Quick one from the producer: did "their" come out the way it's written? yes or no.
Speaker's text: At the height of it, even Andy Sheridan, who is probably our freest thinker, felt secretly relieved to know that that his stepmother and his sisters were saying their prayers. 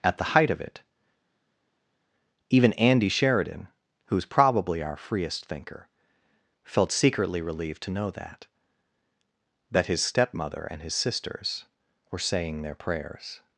yes